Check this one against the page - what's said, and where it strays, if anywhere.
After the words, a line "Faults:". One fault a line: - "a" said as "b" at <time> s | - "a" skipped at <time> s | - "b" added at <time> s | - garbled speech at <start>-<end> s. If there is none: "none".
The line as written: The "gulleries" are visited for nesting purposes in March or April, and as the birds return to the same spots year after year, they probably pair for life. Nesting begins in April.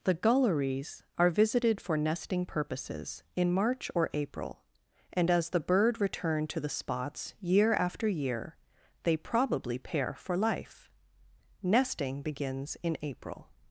The "gulleries" are visited for nesting purposes in March or April, and as the bird return to the spots year after year, they probably pair for life. Nesting begins in April.
Faults:
- "birds" said as "bird" at 5.6 s
- "same" skipped at 6.7 s